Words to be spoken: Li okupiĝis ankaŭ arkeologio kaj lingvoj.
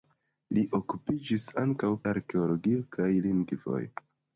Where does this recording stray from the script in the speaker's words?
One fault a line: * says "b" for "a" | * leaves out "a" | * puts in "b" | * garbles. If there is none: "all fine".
all fine